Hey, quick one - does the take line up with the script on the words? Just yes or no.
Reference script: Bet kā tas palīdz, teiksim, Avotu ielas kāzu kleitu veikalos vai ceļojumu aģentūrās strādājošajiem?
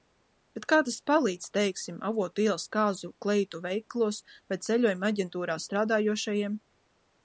yes